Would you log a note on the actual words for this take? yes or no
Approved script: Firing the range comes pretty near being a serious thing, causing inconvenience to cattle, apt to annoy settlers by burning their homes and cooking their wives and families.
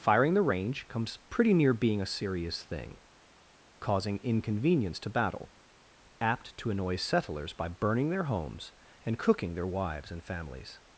yes